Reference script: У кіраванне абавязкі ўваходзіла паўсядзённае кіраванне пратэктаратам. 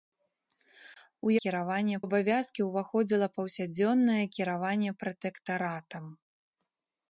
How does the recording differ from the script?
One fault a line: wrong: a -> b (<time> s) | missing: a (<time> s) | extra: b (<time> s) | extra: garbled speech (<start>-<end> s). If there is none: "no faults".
no faults